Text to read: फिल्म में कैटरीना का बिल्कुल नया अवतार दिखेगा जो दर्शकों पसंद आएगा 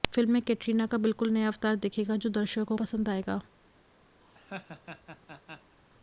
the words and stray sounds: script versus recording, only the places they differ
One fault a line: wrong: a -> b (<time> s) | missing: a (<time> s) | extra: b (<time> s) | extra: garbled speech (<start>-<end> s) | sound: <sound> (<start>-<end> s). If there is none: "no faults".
sound: laugh (4.2-5.8 s)